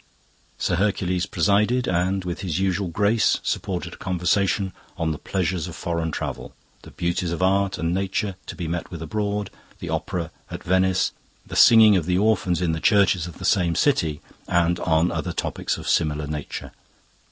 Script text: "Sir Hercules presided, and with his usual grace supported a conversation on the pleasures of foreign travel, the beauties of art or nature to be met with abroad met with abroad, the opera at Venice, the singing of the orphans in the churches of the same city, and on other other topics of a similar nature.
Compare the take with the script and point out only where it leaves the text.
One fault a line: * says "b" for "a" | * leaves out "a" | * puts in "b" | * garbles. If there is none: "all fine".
* says "and" for "or"
* leaves out "met with abroad"
* leaves out "other"